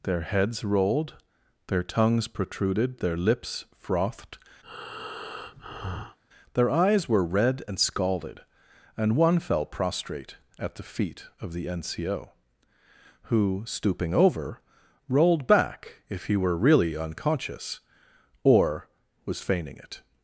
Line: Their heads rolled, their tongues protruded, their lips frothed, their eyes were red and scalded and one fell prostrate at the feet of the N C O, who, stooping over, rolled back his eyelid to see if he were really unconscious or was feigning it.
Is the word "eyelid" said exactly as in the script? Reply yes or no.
no